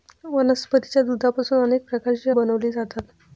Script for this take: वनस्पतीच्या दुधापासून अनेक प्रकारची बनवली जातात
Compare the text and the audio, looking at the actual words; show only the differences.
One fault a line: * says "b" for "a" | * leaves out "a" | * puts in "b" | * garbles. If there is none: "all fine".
all fine